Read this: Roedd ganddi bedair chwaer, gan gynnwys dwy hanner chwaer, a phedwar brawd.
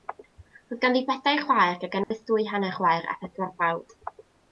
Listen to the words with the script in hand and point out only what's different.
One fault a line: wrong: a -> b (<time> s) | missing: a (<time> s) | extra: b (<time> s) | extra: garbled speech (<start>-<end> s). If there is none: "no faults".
no faults